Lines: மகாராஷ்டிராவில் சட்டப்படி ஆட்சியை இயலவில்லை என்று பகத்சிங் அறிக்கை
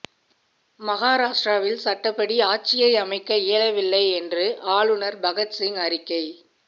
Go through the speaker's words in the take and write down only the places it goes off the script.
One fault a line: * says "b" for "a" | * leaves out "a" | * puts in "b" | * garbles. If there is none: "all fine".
* puts in "அமைக்க"
* puts in "ஆளுநர்"